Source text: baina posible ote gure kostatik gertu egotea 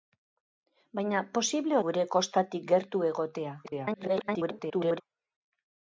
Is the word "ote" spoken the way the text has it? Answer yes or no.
no